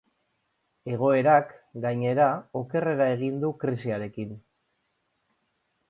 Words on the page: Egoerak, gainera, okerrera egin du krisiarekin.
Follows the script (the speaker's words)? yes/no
yes